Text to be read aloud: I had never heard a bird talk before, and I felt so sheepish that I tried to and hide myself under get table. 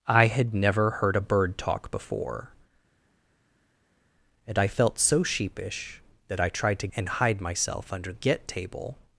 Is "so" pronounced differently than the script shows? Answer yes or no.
no